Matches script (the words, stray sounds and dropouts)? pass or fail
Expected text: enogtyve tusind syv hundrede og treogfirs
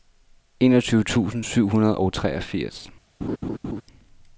fail